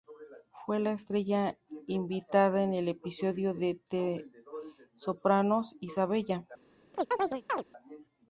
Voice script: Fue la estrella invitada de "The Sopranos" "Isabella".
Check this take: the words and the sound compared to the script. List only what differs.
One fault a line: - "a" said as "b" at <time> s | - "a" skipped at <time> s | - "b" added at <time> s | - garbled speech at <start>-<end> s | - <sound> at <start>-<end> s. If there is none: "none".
- "en el episodio" added at 2.6 s
- chirp at 6.9-7.6 s